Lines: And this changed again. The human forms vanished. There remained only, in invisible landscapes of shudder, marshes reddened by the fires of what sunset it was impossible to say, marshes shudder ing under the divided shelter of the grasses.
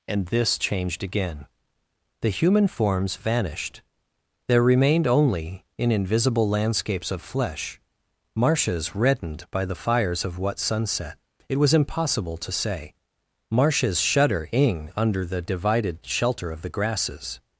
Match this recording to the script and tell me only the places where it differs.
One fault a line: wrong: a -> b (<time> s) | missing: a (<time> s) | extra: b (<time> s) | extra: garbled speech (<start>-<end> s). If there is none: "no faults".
wrong: shudder -> flesh (7.2 s)